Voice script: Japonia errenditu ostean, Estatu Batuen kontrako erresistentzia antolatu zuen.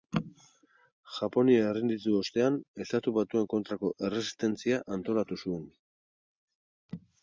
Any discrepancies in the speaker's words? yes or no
no